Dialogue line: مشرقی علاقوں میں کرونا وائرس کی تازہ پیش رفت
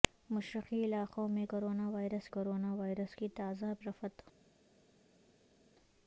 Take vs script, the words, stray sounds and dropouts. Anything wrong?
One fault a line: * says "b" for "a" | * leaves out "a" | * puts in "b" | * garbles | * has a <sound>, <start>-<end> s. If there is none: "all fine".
* puts in "کرونا وائرس"
* leaves out "پیش"